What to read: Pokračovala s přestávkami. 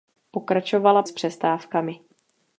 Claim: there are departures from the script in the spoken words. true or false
false